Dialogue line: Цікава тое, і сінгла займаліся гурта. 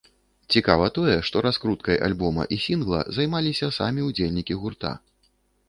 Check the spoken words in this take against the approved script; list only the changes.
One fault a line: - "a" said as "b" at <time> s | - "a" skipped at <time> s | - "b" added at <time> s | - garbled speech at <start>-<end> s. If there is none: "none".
- "што раскруткай альбома" added at 1.3 s
- "самі ўдзельнікі" added at 3.8 s